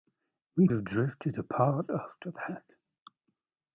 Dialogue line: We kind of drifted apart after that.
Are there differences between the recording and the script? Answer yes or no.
yes